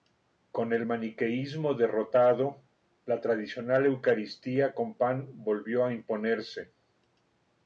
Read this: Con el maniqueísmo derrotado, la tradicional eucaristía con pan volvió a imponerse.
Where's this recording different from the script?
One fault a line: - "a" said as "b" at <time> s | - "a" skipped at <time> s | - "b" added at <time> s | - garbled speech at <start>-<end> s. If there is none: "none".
none